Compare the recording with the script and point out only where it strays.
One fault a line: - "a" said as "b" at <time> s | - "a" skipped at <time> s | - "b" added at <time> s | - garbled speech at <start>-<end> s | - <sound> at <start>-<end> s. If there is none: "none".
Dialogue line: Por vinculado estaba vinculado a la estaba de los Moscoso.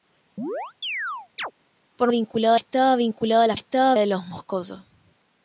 - chirp at 0.4-1.5 s